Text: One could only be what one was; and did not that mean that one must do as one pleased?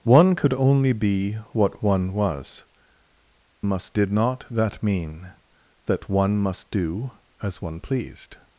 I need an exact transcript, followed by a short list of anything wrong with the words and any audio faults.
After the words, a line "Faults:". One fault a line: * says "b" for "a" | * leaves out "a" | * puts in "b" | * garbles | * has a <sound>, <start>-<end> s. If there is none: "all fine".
One could only be what one was; must did not that mean that one must do as one pleased?
Faults:
* says "must" for "and"